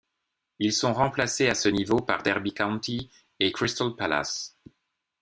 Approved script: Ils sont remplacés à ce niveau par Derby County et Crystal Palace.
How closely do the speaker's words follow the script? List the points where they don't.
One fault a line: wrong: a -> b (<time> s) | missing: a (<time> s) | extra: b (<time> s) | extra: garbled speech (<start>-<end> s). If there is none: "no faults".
no faults